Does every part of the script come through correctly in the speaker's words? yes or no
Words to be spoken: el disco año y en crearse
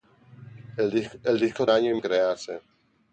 yes